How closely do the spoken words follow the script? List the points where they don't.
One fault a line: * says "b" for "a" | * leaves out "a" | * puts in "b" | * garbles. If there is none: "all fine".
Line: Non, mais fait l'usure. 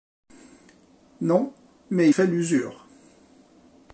all fine